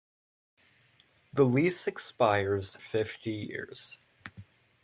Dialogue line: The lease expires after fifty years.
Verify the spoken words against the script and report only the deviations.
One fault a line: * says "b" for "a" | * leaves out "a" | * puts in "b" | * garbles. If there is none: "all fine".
* leaves out "after"